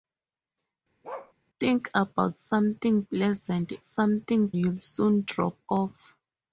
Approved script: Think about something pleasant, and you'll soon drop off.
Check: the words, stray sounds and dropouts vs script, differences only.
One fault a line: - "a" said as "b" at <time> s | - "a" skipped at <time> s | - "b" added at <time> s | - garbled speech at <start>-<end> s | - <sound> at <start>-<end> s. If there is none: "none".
- bark at 1.0-1.3 s
- "and" said as "something" at 3.8 s